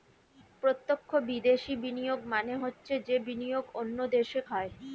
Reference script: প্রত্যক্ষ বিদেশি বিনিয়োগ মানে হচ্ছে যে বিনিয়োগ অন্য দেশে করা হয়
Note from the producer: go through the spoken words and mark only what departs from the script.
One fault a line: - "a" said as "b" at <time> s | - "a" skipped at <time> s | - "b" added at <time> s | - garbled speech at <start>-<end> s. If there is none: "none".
- "করা" skipped at 4.4 s